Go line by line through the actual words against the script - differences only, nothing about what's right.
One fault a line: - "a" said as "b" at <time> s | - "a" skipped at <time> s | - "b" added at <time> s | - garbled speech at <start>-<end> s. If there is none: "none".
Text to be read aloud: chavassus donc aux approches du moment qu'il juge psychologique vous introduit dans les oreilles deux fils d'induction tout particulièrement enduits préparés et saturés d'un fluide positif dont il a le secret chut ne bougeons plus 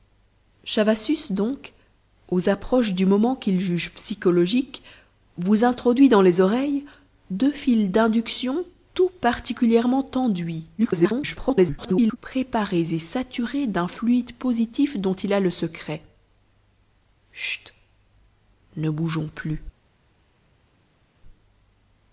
- garbled speech at 10.8-12.2 s